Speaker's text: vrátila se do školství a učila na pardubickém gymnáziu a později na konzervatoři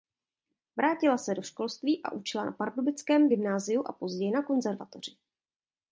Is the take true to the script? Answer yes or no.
yes